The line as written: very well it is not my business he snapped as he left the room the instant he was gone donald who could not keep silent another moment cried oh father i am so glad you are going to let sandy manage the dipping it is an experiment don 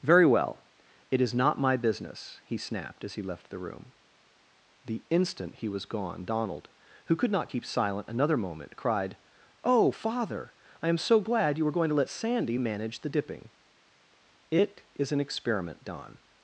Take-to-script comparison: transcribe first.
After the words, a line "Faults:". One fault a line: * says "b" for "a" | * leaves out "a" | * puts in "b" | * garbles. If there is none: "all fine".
very well it is not my business he snapped as he left the room the instant he was gone donald who could not keep silent another moment cried oh father i am so glad you were going to let sandy manage the dipping it is an experiment don
Faults:
* says "were" for "are"